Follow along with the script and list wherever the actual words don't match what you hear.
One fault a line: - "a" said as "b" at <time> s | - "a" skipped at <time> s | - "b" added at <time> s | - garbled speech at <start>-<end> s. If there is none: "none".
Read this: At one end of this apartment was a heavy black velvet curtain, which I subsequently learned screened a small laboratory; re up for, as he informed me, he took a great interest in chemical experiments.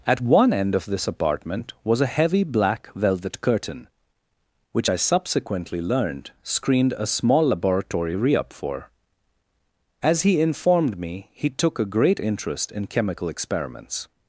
none